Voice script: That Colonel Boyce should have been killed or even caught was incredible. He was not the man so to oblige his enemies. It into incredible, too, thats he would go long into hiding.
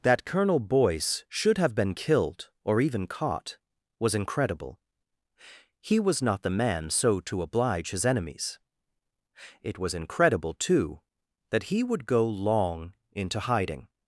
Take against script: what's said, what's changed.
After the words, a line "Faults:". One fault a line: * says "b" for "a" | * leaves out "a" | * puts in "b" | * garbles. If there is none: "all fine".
That Colonel Boyce should have been killed or even caught was incredible. He was not the man so to oblige his enemies. It was incredible, too, that he would go long into hiding.
Faults:
* says "was" for "into"
* says "that" for "thats"